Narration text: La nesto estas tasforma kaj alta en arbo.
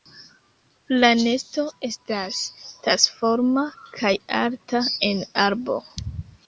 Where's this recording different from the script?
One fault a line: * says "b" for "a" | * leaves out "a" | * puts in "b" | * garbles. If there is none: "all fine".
all fine